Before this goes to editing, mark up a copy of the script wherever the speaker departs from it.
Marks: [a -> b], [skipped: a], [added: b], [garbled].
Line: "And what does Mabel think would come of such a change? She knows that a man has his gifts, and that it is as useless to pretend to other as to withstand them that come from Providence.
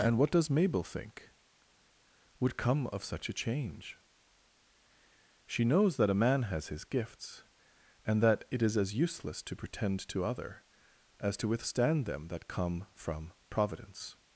"And what does Mabel think would come of such a change? She knows that a man has his gifts, and that it is as useless to pretend to other as to withstand them that come from Providence.